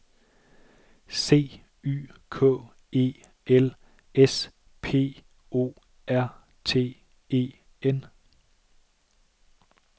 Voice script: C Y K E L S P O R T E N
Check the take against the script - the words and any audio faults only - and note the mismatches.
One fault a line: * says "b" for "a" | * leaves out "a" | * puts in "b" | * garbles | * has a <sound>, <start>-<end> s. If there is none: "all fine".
all fine